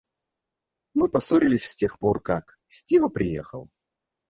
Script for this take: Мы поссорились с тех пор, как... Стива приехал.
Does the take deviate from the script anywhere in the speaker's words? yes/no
no